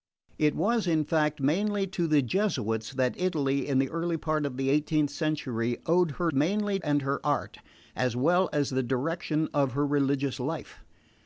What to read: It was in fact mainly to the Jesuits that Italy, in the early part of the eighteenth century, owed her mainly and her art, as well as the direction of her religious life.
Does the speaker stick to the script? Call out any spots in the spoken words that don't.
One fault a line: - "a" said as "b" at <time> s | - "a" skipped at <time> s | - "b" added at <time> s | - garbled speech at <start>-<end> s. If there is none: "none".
none